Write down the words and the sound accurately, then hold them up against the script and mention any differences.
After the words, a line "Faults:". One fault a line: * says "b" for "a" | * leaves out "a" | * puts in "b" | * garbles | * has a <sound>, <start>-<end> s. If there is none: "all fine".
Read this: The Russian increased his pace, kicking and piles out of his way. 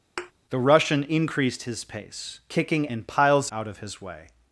The Russian increased his pace, kicking and piles out of his way.
Faults:
* has a thud, 0.2-0.3 s